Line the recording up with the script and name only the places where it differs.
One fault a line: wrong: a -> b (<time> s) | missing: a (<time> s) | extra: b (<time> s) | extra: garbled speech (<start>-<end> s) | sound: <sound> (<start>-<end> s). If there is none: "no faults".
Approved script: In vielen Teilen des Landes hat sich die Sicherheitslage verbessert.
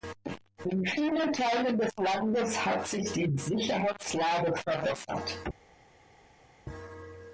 no faults